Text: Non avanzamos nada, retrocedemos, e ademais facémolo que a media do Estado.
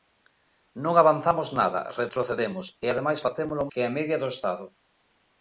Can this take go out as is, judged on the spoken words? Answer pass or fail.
pass